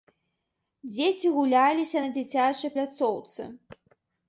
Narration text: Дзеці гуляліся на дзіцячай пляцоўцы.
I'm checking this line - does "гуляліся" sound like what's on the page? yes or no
yes